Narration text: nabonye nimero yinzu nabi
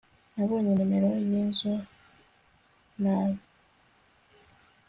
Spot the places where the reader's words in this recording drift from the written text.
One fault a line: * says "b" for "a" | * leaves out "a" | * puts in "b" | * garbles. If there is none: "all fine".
all fine